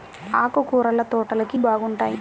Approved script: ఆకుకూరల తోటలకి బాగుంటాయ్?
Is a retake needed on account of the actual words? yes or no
no